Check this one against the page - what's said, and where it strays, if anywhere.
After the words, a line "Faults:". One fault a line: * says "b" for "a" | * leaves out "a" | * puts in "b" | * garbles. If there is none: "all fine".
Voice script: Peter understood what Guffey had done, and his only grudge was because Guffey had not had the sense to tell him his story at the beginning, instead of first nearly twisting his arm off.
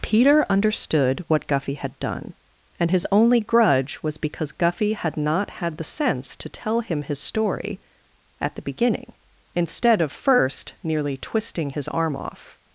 Peter understood what Guffey had done, and his only grudge was because Guffey had not had the sense to tell him his story at the beginning, instead of first nearly twisting his arm off.
Faults:
all fine